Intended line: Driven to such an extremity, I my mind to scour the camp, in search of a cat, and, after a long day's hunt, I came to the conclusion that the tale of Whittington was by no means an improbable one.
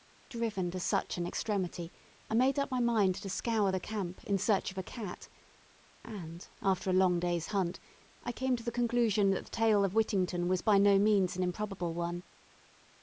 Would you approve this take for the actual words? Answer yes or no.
no